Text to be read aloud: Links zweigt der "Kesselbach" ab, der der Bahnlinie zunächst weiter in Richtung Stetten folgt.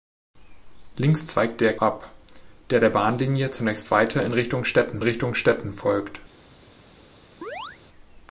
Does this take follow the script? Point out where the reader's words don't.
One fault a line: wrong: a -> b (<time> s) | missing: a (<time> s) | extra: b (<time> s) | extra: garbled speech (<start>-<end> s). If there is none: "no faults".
missing: Kesselbach (1.8 s)
extra: Richtung Stetten (5.0 s)